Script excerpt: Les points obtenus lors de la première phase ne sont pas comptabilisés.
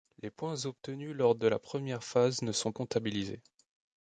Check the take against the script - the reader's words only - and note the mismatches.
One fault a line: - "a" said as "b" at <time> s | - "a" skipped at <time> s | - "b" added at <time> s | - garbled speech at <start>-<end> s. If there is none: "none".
- "pas" skipped at 2.7 s